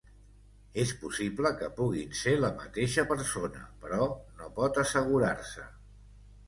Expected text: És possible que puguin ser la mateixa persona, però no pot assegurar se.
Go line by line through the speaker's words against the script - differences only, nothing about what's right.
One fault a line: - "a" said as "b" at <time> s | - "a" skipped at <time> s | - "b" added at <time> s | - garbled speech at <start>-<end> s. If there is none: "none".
none